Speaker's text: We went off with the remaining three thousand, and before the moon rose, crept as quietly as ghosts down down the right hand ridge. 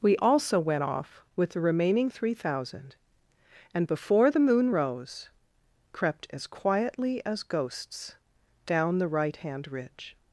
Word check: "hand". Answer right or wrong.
right